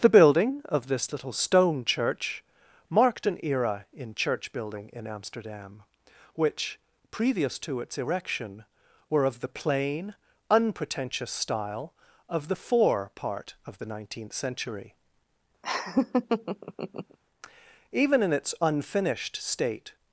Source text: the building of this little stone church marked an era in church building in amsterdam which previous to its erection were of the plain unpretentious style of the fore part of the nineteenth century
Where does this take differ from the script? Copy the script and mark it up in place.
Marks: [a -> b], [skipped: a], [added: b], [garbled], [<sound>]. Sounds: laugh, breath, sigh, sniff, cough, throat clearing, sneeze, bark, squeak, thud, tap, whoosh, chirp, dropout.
the building of this little stone church marked an era in church building in amsterdam which previous to its erection were of the plain unpretentious style of the fore part of the nineteenth century [laugh] [added: even in its unfinished state]